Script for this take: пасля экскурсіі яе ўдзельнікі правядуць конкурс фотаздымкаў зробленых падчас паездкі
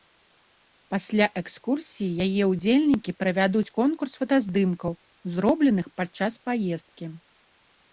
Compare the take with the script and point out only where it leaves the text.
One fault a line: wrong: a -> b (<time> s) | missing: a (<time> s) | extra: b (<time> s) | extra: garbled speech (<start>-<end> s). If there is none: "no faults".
no faults